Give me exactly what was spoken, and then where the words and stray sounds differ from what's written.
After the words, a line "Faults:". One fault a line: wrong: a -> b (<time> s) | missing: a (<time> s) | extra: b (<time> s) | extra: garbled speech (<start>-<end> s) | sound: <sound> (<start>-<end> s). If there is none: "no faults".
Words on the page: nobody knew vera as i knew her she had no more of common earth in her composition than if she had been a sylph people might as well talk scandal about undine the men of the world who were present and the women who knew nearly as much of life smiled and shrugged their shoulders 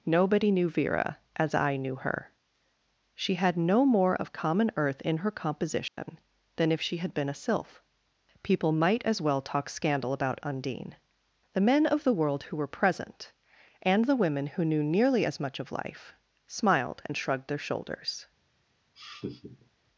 nobody knew vera as i knew her she had no more of common earth in her composition than if she had been a sylph people might as well talk scandal about undine the men of the world who were present and the women who knew nearly as much of life smiled and shrugged their shoulders
Faults:
sound: dropout (5.9-6.0 s)
sound: laugh (19.0-19.7 s)